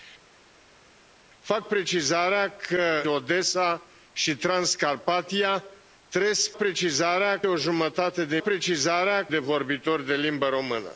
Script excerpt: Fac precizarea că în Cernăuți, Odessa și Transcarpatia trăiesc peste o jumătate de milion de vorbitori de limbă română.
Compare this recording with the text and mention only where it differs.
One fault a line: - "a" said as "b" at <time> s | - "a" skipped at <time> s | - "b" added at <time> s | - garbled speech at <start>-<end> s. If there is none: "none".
- "în Cernăuți" skipped at 3.0 s
- "peste" said as "precizarea" at 6.6 s
- "milion" said as "precizarea" at 8.4 s